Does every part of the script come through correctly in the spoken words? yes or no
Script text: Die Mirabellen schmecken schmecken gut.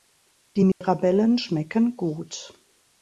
no